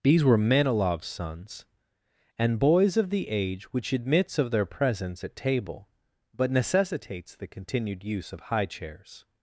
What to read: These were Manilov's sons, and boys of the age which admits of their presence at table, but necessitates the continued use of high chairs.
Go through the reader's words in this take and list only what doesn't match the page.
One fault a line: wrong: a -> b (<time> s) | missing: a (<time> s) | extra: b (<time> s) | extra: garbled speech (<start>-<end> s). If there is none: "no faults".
no faults